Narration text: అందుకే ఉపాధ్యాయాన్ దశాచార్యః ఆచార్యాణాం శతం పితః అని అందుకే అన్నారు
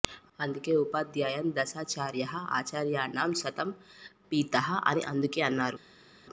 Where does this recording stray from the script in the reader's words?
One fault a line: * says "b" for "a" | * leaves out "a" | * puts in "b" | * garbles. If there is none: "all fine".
all fine